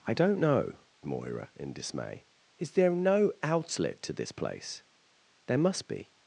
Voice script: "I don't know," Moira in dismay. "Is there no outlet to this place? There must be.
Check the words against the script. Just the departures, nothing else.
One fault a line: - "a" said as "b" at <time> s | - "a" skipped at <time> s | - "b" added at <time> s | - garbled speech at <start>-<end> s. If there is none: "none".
none